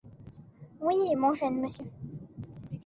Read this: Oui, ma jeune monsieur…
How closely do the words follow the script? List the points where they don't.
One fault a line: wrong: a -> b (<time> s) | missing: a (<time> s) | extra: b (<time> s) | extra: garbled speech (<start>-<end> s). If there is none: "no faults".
wrong: ma -> mon (1.1 s)